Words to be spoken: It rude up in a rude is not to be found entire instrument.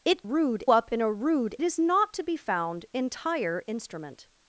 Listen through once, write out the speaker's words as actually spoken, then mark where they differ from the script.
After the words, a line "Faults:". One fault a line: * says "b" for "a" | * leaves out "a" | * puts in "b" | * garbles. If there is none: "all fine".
It rude up in a rude is not to be found entire instrument.
Faults:
all fine